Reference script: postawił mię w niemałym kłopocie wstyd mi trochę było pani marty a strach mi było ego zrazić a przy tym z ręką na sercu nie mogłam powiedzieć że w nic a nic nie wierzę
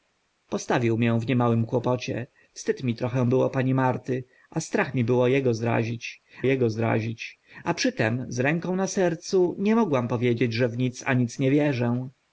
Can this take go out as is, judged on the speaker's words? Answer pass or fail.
fail